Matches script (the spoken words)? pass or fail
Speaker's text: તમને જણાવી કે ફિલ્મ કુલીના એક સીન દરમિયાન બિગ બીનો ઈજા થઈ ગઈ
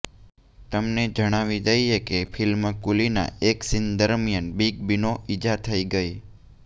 fail